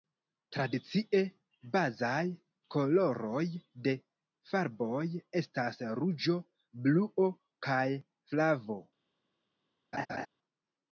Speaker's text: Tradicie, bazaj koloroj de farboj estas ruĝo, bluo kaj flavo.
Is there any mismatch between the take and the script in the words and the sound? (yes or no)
yes